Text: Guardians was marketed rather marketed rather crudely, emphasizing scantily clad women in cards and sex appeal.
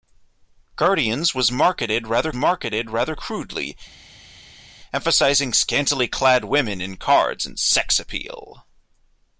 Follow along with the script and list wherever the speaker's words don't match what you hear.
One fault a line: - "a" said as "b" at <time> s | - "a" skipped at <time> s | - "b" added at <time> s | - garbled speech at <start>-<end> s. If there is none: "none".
none